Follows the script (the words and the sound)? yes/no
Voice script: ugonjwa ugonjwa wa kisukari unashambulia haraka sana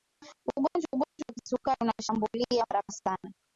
no